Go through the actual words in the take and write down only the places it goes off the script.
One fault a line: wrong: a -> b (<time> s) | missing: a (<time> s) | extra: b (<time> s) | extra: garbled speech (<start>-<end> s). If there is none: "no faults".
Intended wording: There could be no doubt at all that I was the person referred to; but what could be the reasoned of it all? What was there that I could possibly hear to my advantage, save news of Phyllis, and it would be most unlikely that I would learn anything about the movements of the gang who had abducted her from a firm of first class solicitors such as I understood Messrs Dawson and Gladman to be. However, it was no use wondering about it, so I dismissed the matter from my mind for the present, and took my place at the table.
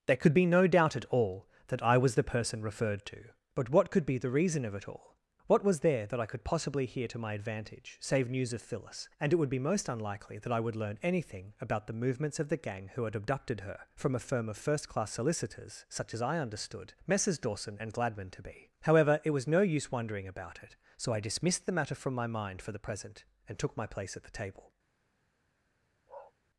wrong: reasoned -> reason (4.3 s)